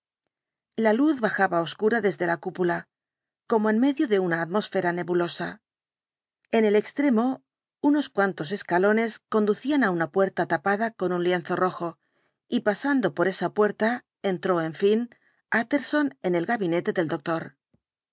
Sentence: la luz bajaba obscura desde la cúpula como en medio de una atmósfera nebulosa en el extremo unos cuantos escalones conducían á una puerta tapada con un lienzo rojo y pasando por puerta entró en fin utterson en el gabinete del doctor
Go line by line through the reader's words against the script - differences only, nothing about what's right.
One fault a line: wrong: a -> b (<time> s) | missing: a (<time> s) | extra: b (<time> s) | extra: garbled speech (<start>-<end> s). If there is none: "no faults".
extra: esa (13.3 s)